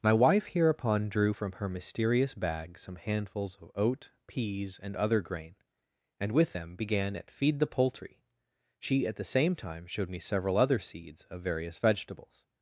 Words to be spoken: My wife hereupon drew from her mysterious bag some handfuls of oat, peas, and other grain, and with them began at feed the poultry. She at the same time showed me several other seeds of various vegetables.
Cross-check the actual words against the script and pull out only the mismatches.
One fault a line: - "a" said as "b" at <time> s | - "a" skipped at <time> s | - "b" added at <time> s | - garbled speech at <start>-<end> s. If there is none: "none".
none